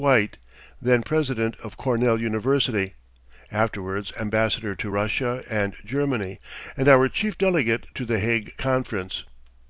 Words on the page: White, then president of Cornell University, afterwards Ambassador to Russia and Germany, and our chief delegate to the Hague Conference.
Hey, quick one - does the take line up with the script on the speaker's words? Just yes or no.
yes